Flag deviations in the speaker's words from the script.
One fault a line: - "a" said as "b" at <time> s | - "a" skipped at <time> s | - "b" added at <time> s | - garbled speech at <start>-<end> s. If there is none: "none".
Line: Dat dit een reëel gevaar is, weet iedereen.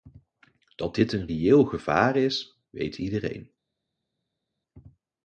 none